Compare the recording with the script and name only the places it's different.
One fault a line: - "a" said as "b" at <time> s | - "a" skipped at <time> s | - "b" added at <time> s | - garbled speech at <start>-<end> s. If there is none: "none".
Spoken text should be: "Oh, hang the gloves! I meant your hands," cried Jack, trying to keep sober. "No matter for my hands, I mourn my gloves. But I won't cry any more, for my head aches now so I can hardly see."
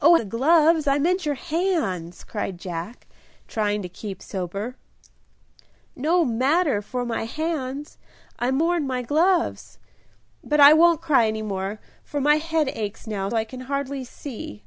- "hang" skipped at 0.1 s
- "so" skipped at 13.3 s